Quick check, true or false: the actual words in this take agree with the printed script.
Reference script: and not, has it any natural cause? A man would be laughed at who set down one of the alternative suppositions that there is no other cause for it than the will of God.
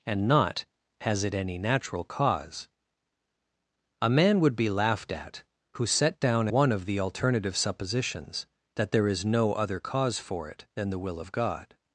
true